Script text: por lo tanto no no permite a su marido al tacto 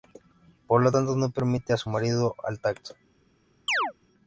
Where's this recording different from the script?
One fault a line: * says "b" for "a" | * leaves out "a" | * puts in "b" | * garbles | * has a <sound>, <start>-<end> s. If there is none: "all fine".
* leaves out "no"
* has a chirp, 3.7-3.9 s